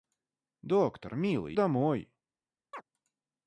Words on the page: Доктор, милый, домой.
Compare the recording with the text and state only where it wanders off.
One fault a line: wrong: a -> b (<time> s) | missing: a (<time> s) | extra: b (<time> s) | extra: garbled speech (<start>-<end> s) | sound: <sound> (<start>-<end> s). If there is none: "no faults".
sound: chirp (2.7-2.8 s)